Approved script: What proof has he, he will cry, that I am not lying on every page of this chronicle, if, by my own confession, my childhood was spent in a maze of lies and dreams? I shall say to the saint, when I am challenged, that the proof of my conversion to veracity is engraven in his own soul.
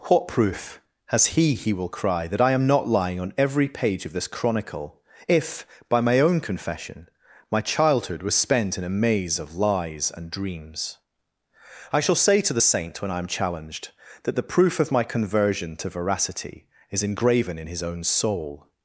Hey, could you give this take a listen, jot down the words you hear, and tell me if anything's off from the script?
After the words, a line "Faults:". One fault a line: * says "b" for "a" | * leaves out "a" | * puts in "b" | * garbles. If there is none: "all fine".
What proof has he, he will cry, that I am not lying on every page of this chronicle, if, by my own confession, my childhood was spent in a maze of lies and dreams? I shall say to the saint, when I am challenged, that the proof of my conversion to veracity is engraven in his own soul.
Faults:
all fine